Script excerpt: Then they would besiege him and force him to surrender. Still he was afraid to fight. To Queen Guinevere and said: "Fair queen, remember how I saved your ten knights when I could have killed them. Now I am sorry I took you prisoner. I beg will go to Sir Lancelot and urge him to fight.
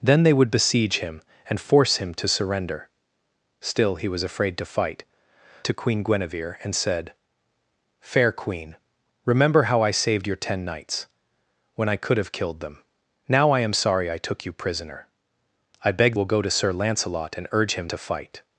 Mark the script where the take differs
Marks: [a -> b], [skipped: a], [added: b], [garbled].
Then they would besiege him and force him to surrender. Still he was afraid to fight. To Queen Guinevere and said: "Fair queen, remember how I saved your ten knights when I could have killed them. Now I am sorry I took you prisoner. I beg will go to Sir Lancelot and urge him to fight.